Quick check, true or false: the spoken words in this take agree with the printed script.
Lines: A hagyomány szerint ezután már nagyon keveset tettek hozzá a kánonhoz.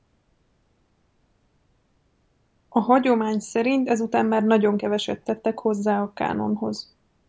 true